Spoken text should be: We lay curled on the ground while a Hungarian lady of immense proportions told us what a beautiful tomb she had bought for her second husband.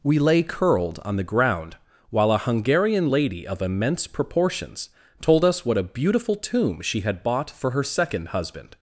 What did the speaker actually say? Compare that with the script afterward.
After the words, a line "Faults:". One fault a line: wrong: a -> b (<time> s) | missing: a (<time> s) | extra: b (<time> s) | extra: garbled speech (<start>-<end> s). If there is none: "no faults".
We lay curled on the ground while a Hungarian lady of immense proportions told us what a beautiful tomb she had bought for her second husband.
Faults:
no faults